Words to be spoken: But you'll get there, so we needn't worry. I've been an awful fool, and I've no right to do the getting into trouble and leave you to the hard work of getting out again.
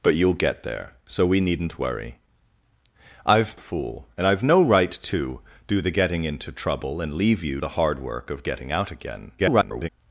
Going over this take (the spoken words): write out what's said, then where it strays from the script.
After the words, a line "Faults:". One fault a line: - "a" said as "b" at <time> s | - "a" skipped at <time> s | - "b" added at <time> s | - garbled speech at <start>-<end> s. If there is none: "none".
But you'll get there, so we needn't worry. I've fool, and I've no right to do the getting into trouble and leave you the hard work of getting out again. [garbled]
Faults:
- "been an awful" skipped at 3.5 s
- "to" skipped at 7.6 s
- garbled speech at 9.4-9.9 s